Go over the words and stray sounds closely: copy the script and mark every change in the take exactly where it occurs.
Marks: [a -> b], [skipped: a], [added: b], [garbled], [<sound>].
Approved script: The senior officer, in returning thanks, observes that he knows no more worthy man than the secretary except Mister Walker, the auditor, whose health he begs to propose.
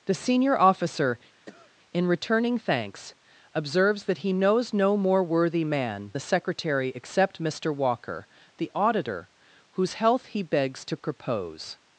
The senior officer, [cough] in returning thanks, observes that he knows no more worthy man [skipped: than] the secretary except Mister Walker, the auditor, whose health he begs to propose.